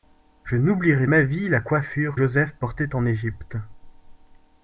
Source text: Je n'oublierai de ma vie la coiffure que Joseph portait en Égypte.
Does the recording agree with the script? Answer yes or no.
no